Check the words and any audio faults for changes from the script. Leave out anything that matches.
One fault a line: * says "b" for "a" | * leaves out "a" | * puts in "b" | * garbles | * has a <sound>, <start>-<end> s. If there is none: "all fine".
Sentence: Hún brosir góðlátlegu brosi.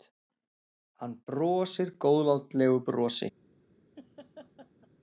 * says "Hann" for "Hún"
* has a laugh, 4.0-4.9 s